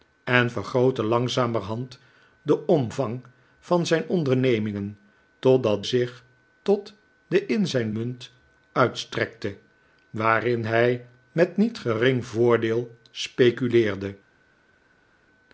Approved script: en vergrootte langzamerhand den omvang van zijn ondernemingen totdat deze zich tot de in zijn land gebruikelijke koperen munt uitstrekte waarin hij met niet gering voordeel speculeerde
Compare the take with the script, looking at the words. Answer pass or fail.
fail